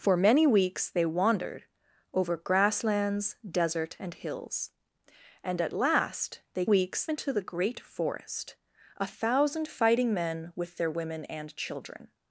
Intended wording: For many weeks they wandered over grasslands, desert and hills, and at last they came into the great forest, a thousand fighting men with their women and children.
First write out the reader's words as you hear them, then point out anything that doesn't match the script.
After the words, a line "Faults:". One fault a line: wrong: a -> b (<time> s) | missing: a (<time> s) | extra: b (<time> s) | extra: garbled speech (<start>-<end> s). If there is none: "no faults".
For many weeks they wandered over grasslands, desert and hills, and at last they weeks into the great forest, a thousand fighting men with their women and children.
Faults:
wrong: came -> weeks (6.6 s)